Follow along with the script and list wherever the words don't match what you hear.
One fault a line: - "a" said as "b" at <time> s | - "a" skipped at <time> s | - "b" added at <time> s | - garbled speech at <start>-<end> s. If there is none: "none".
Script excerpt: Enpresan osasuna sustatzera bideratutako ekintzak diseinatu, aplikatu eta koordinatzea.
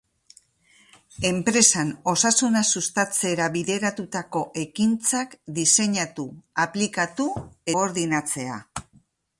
- "eta" skipped at 7.3 s